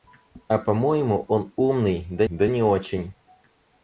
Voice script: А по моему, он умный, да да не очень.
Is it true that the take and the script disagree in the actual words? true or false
false